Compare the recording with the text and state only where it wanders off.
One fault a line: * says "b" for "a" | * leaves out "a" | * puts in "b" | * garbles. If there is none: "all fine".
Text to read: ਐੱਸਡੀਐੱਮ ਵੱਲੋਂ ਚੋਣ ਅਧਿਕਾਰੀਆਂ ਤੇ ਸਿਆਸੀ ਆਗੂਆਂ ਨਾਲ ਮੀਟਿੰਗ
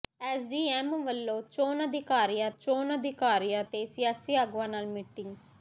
* puts in "ਚੋਣ ਅਧਿਕਾਰੀਆਂ"